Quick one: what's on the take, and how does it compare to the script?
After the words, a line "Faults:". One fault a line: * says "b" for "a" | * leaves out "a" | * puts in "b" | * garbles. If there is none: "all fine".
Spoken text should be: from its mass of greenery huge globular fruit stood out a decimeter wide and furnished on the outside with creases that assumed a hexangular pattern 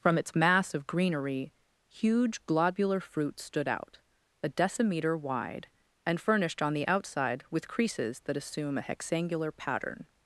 from its mass of greenery huge globular fruit stood out a decimeter wide and furnished on the outside with creases that assume a hexangular pattern
Faults:
* says "assume" for "assumed"